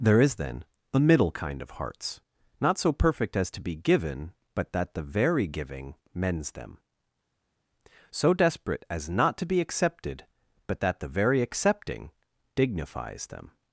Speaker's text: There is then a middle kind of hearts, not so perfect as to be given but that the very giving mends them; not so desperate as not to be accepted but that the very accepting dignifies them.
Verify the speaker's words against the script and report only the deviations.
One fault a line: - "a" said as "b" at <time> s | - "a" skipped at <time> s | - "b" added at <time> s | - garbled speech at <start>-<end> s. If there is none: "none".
- "not" skipped at 6.8 s